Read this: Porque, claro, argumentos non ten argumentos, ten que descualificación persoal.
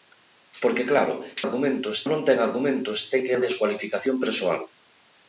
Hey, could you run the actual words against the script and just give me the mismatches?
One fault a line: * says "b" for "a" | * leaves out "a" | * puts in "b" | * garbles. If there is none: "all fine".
all fine